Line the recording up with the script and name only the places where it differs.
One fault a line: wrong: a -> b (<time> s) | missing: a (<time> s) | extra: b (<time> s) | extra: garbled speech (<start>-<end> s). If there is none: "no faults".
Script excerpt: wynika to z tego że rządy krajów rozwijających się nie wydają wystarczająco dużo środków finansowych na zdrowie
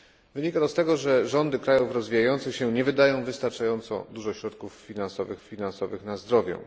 extra: finansowych (5.4 s)